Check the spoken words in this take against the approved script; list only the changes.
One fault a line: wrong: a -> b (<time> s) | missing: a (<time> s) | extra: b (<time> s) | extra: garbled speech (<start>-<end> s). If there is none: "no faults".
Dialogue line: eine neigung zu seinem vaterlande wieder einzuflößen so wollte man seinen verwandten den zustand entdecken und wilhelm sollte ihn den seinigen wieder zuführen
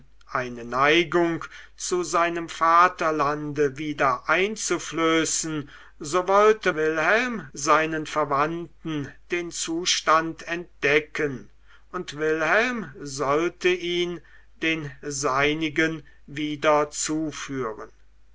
wrong: man -> wilhelm (6.7 s)